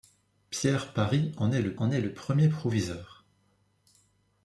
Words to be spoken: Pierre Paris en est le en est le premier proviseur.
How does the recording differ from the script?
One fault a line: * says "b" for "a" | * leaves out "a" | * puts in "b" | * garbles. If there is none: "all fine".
all fine